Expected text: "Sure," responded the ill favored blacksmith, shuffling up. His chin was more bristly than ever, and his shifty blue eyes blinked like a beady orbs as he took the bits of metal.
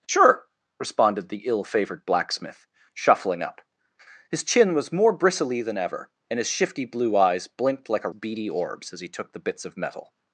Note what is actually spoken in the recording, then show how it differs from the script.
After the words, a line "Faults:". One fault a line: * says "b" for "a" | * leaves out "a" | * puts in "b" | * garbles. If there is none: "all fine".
"Sure," responded the ill favored blacksmith, shuffling up. His chin was more bristly than ever, and his shifty blue eyes blinked like a beady orbs as he took the bits of metal.
Faults:
all fine